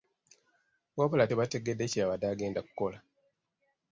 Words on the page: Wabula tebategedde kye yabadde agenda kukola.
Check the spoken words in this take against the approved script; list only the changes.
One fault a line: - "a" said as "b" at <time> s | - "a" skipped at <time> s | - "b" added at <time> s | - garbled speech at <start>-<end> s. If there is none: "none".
none